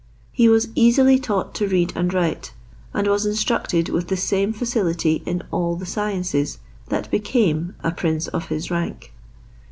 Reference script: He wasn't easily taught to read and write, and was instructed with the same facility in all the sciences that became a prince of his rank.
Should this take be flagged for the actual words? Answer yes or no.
yes